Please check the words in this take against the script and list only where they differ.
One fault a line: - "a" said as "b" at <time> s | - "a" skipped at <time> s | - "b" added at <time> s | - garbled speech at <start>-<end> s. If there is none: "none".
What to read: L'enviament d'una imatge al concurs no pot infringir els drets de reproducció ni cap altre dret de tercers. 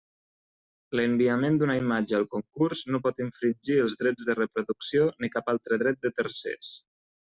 none